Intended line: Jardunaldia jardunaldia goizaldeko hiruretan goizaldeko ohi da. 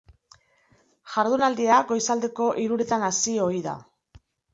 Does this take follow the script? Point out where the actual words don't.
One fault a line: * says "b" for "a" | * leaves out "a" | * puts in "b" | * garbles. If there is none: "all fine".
* leaves out "jardunaldia"
* says "hasi" for "goizaldeko"